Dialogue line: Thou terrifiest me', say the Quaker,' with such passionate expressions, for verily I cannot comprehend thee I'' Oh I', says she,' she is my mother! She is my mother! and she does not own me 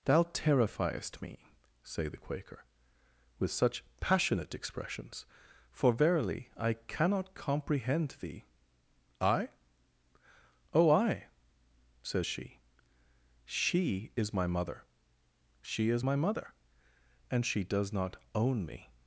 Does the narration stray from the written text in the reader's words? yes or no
no